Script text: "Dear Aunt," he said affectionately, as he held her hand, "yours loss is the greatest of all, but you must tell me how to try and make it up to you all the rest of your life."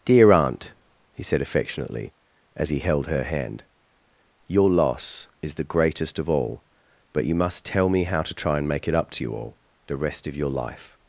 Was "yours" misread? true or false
true